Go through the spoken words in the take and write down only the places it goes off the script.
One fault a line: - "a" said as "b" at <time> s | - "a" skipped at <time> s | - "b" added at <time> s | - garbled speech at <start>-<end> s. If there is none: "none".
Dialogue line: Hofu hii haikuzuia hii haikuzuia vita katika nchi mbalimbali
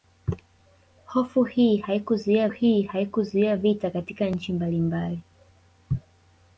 none